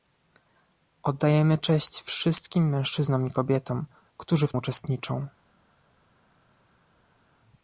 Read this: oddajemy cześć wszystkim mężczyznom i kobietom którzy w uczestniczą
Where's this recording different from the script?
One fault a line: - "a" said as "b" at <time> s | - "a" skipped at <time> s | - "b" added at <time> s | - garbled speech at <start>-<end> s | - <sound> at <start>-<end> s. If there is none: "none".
none